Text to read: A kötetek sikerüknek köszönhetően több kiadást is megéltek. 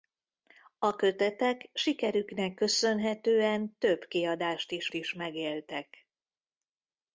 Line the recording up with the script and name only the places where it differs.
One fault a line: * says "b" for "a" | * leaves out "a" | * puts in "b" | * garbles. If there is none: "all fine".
* puts in "is"